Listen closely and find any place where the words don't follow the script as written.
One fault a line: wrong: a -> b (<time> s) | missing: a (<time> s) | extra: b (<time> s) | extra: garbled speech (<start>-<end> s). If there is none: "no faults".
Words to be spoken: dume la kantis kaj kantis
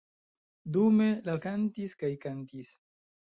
no faults